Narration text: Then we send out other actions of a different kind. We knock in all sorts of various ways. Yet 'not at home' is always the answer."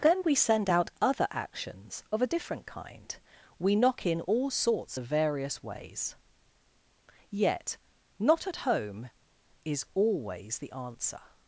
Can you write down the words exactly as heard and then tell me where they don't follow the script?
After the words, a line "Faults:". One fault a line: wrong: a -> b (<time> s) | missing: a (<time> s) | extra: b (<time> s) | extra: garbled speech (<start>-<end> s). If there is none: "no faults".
Then we send out other actions of a different kind. We knock in all sorts of various ways. Yet 'not at home' is always the answer."
Faults:
no faults